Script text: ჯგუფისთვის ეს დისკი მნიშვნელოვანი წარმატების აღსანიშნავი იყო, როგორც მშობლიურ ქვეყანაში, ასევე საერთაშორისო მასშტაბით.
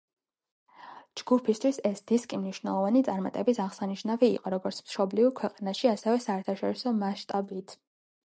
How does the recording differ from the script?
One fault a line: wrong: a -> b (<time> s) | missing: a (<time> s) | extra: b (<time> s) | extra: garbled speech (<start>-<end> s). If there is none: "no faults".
no faults